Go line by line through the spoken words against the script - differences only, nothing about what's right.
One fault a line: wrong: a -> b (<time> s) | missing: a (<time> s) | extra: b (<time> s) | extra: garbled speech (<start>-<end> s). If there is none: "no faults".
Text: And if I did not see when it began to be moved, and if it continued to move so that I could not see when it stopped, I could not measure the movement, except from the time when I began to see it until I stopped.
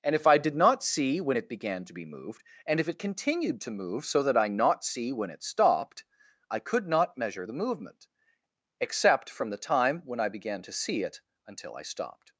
missing: could (4.5 s)